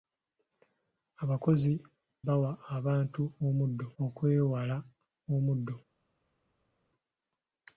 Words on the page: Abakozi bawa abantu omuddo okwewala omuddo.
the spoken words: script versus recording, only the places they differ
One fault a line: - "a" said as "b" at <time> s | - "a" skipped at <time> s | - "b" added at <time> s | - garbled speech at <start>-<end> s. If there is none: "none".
none